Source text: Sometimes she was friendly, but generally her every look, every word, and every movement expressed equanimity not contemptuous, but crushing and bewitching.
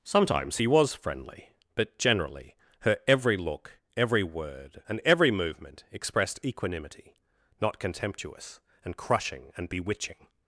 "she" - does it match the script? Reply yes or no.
no